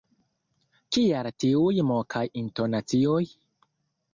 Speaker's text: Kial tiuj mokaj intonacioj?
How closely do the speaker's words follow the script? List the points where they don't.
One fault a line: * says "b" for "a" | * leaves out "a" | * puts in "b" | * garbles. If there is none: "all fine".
all fine